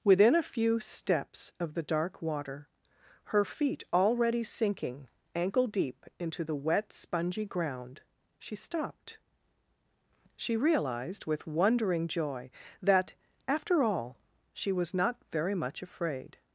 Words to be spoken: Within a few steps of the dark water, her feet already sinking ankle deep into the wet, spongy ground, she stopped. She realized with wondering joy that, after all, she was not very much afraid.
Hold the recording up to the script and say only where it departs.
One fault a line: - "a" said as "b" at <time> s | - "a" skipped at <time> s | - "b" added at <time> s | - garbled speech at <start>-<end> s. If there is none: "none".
none